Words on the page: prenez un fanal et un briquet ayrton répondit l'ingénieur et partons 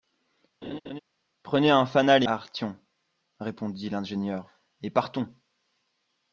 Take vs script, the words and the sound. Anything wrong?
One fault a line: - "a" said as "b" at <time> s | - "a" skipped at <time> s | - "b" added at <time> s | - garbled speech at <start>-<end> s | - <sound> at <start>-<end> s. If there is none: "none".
- laugh at 0.6-1.0 s
- "un briquet" skipped at 2.3 s